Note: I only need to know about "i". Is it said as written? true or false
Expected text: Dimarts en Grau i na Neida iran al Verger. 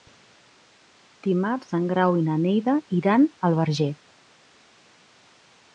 true